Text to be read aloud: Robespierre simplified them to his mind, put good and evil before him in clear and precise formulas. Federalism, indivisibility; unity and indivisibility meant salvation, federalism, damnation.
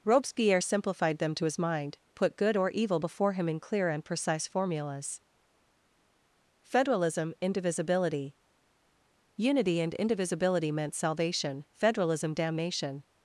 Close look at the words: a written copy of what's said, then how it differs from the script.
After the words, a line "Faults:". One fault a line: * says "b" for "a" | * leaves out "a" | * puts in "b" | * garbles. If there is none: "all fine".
Robespierre simplified them to his mind, put good or evil before him in clear and precise formulas. Federalism, indivisibility; unity and indivisibility meant salvation, federalism, damnation.
Faults:
* says "or" for "and"